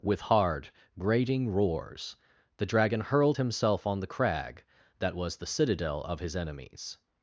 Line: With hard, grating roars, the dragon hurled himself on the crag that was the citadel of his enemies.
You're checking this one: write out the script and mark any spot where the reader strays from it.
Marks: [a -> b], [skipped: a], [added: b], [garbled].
With hard, grating roars, the dragon hurled himself on the crag that was the citadel of his enemies.